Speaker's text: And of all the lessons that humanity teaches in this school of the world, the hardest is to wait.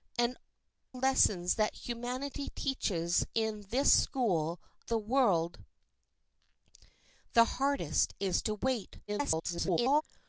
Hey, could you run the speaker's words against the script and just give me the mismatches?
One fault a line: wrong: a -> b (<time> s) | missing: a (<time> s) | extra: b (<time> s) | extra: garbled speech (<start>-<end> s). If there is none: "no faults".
missing: of all the (0.3 s)
missing: of (4.6 s)
extra: garbled speech (9.1-10.0 s)